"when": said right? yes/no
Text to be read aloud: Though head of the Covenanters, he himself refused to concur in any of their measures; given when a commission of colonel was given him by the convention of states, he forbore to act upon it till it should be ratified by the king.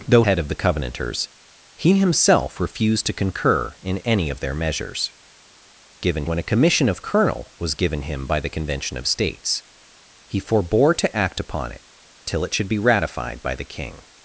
yes